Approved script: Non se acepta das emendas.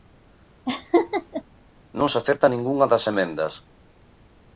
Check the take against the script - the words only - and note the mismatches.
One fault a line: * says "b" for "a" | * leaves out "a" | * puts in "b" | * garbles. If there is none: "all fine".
* puts in "ningunha"